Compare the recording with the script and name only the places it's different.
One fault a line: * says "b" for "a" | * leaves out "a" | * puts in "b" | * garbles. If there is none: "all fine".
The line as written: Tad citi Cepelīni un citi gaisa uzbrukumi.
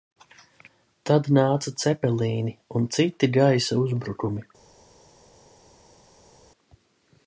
* says "nāca" for "citi"